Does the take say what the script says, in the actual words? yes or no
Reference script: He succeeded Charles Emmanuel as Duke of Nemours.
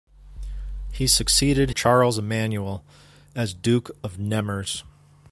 yes